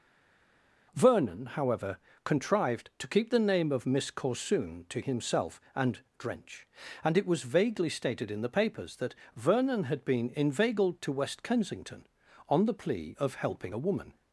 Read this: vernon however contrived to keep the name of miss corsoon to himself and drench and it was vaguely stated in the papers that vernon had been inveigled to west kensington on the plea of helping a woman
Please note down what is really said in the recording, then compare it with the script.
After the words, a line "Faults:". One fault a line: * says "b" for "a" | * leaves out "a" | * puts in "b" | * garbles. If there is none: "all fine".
vernon however contrived to keep the name of miss corsoon to himself and drench and it was vaguely stated in the papers that vernon had been inveigled to west kensington on the plea of helping a woman
Faults:
all fine